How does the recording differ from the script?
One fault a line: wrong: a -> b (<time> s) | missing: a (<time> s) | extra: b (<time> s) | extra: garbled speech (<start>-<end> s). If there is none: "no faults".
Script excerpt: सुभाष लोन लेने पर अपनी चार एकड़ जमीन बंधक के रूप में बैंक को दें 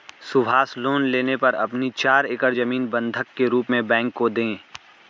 no faults